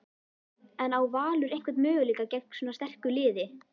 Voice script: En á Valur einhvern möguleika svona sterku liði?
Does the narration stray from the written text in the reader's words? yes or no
yes